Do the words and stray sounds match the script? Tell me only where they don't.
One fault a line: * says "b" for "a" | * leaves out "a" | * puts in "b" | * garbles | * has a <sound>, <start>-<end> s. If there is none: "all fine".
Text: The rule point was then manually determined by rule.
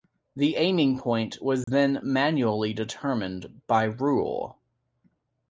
* says "aiming" for "rule"
* has a dropout, 1.6-1.7 s